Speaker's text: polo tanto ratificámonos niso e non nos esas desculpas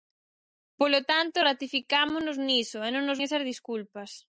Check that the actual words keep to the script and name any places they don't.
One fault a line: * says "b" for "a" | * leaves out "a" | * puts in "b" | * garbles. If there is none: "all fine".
all fine